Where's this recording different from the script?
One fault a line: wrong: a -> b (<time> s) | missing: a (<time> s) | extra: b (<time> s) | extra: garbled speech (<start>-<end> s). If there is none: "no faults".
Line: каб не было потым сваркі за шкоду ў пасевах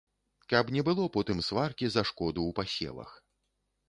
no faults